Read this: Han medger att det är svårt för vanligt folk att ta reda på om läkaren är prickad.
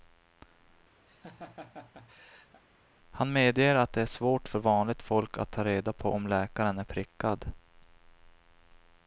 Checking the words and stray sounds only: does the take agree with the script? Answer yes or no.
no